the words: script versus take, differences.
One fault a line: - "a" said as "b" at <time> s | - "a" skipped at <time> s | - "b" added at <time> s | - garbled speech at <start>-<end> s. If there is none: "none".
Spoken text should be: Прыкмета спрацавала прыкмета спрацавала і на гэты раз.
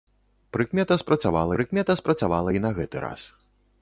none